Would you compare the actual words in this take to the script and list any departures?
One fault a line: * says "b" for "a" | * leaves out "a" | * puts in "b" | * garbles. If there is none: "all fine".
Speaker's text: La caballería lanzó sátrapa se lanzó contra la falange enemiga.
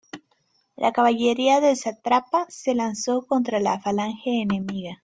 * says "del" for "lanzó"